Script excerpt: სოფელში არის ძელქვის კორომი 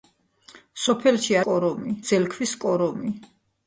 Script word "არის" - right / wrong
wrong